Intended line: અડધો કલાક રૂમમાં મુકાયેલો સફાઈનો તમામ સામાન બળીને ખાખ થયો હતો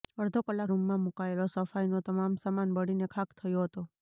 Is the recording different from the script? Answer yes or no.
no